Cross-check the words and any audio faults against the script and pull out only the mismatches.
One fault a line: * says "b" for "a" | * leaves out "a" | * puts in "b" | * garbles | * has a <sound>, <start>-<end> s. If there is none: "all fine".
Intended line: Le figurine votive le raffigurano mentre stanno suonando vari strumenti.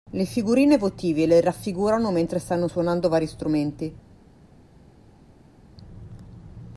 all fine